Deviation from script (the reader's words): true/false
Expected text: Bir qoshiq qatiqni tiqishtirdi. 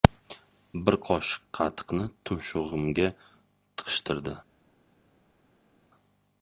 true